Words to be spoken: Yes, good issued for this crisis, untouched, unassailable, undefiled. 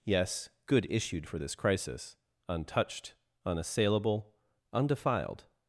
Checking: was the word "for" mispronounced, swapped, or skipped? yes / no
no